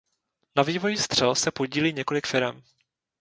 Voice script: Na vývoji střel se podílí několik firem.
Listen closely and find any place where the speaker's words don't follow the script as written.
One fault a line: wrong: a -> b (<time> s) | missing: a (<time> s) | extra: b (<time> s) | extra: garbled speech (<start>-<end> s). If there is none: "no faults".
no faults